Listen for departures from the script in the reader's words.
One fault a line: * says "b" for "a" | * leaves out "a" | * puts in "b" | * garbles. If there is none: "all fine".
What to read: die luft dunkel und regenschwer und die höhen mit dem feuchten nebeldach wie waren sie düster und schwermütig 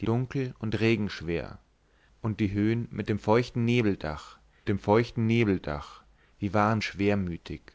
* leaves out "luft"
* says "dem feuchten nebeldach wie waren" for "wie waren sie düster und"